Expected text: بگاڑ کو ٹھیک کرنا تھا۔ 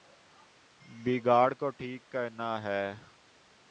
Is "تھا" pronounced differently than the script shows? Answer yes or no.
yes